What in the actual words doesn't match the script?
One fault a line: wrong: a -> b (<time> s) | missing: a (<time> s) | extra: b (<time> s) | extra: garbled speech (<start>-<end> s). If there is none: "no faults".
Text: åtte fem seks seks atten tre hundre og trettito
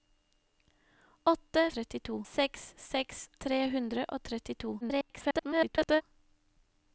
wrong: fem -> trettito (1.8 s)
missing: atten (3.3 s)
extra: garbled speech (4.8-6.0 s)